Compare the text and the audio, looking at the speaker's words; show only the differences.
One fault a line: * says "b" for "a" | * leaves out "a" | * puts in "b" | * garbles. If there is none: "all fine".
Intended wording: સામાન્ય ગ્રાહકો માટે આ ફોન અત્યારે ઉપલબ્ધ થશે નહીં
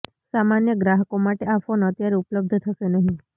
all fine